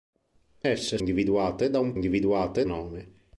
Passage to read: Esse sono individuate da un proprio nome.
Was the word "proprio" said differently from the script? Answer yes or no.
yes